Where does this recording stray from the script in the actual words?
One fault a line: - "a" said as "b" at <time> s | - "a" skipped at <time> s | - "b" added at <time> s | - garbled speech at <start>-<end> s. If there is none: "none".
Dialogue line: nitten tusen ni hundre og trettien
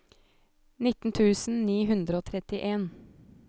none